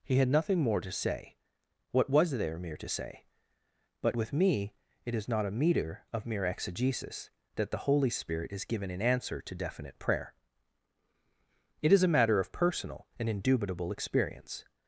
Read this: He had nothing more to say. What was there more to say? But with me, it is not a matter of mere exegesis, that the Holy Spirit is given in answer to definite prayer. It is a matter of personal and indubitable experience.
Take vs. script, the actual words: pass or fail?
fail